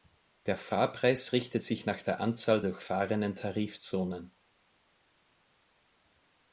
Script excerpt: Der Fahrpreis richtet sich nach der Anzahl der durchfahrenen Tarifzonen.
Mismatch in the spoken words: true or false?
true